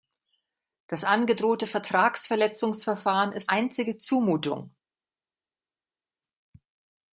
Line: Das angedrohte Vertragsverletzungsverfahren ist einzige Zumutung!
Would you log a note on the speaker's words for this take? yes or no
no